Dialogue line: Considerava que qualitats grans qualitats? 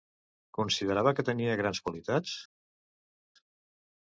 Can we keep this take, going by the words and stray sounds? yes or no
no